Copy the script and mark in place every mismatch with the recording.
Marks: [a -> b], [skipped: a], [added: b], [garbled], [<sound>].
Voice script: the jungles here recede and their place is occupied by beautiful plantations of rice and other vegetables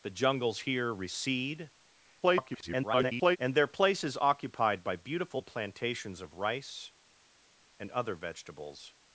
the jungles here recede [garbled] and their place is occupied by beautiful plantations of rice and other vegetables